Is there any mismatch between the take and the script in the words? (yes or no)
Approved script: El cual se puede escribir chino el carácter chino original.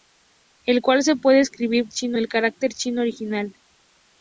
no